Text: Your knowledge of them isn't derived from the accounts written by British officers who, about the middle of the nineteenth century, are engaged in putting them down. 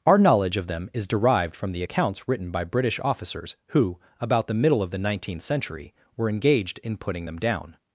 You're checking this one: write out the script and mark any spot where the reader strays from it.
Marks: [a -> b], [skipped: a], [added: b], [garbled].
[Your -> Our] knowledge of them [isn't -> is] derived from the accounts written by British officers who, about the middle of the nineteenth century, [are -> were] engaged in putting them down.